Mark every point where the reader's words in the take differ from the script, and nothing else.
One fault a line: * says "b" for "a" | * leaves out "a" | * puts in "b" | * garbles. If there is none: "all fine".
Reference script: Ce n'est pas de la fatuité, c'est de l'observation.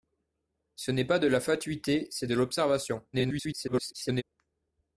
* garbles